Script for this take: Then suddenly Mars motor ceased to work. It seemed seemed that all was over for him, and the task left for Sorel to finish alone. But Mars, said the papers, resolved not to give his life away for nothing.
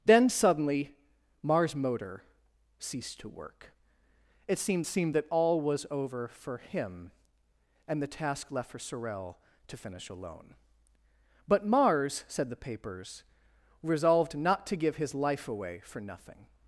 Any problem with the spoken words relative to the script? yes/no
no